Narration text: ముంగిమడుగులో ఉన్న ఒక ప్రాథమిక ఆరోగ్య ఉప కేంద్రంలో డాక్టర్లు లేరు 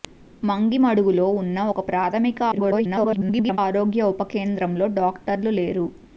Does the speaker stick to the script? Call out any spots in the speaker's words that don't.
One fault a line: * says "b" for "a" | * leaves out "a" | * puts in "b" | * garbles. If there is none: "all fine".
* garbles